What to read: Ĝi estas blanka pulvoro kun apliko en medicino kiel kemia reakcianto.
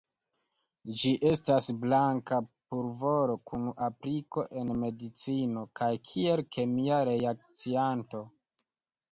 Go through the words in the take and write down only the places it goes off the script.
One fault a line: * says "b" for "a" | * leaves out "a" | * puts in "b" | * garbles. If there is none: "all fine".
* puts in "kaj"